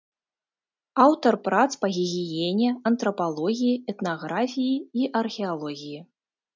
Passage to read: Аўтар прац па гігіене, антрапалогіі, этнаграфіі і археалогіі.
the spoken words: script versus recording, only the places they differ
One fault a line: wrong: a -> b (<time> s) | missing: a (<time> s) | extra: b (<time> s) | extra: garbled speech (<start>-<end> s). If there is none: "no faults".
no faults